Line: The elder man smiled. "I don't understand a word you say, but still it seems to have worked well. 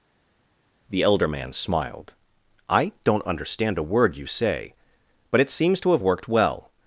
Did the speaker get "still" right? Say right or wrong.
wrong